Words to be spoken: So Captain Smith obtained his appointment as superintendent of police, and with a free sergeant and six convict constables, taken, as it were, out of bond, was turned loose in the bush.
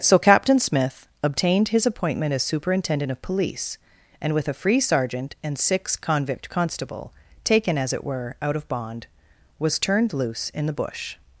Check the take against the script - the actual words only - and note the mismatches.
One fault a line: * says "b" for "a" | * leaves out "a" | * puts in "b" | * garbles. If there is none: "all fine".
* says "constable" for "constables"